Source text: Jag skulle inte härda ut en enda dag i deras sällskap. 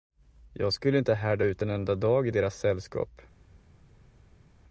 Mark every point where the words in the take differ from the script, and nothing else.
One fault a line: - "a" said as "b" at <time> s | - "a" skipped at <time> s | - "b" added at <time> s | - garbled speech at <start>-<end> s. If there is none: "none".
none